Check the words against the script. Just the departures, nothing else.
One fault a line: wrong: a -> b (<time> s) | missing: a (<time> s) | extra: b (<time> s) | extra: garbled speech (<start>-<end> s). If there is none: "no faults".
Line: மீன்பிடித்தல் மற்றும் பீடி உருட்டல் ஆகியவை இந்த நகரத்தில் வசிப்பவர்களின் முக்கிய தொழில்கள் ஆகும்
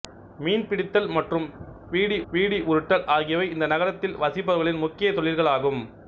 extra: பீடி (2.3 s)